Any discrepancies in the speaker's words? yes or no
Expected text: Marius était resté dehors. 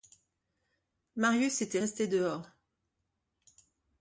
no